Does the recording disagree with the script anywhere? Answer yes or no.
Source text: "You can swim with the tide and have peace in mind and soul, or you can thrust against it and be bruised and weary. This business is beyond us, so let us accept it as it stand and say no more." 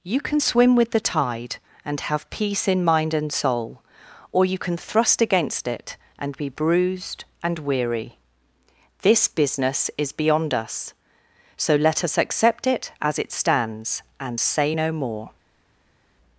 yes